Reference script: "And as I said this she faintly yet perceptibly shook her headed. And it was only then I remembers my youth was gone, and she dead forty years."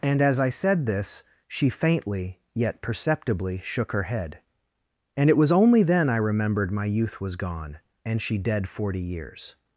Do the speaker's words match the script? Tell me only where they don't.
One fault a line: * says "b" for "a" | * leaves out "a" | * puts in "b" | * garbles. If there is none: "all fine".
* says "head" for "headed"
* says "remembered" for "remembers"